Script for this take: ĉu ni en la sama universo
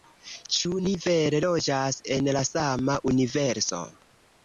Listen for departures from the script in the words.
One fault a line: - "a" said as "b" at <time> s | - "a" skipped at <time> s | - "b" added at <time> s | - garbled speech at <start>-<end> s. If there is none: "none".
- "vere loĝas" added at 1.0 s